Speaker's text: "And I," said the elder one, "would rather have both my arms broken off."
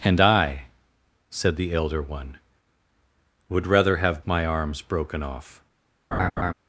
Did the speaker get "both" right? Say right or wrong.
wrong